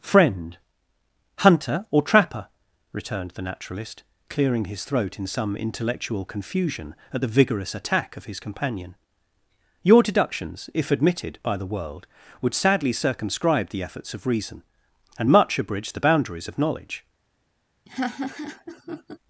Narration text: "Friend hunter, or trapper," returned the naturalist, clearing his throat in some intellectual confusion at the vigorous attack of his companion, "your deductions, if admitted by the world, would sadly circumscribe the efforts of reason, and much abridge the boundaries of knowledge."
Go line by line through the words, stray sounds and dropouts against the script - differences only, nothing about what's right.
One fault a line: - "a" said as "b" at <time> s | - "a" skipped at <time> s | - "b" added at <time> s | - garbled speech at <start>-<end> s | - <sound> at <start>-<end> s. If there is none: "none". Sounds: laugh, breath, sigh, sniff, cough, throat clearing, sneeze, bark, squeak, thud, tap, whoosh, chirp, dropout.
- laugh at 17.9-19.2 s